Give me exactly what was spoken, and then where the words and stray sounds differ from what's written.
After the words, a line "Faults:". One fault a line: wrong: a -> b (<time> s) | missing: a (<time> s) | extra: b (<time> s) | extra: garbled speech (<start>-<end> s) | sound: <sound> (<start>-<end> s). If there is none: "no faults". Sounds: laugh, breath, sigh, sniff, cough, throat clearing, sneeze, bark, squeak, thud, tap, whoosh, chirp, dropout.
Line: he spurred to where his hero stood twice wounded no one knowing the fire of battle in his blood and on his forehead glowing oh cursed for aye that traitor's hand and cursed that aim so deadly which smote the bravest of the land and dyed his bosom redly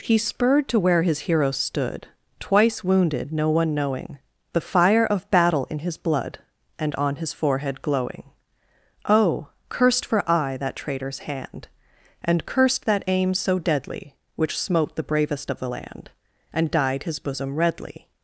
he spurred to where his hero stood twice wounded no one knowing the fire of battle in his blood and on his forehead glowing oh cursed for aye that traitor's hand and cursed that aim so deadly which smote the bravest of the land and dyed his bosom redly
Faults:
no faults